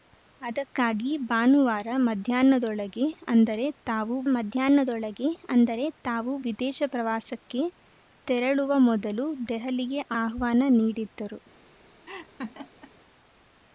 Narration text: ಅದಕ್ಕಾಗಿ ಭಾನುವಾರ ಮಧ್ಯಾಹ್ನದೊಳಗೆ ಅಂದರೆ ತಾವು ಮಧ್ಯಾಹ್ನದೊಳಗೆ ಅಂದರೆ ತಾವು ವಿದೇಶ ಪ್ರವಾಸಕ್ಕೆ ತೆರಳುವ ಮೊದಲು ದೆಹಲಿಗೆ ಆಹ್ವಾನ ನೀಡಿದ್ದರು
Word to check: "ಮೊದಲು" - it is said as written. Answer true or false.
true